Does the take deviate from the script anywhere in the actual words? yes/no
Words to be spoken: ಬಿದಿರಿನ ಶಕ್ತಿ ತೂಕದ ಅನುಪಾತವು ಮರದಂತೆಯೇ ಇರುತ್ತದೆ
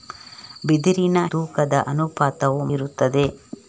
yes